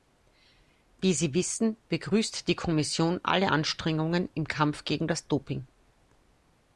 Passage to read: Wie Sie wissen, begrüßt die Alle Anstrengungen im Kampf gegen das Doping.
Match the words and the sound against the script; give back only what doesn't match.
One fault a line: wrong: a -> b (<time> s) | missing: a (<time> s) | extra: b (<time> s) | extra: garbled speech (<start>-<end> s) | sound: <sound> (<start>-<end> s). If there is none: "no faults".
extra: Kommission (2.5 s)